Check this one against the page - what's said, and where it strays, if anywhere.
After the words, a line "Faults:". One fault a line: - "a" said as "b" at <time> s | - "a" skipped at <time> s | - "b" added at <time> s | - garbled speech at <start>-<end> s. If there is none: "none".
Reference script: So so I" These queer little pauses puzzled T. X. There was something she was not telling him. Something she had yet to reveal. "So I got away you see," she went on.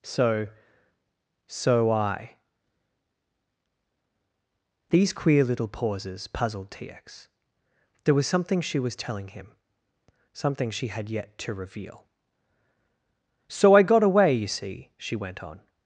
So so I" These queer little pauses puzzled T. X. There was something she was telling him. Something she had yet to reveal. "So I got away you see," she went on.
Faults:
- "not" skipped at 8.9 s